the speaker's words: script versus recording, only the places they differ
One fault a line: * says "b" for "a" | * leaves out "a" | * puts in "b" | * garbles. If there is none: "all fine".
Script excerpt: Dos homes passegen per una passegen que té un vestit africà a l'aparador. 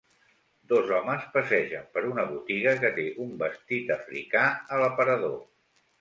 * says "botiga" for "passegen"